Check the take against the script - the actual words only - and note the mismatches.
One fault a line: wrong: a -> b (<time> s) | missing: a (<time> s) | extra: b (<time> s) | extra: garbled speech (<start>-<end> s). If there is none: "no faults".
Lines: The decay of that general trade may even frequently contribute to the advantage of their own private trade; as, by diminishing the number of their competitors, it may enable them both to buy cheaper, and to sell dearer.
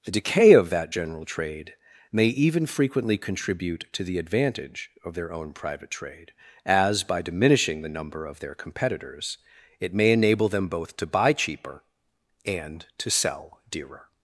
no faults